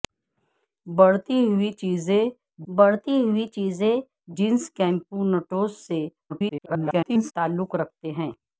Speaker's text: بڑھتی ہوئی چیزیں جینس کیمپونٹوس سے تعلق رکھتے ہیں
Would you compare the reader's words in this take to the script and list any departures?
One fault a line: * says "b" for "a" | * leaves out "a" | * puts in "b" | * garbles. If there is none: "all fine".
* puts in "بڑھتی ہوئی چیزیں"
* garbles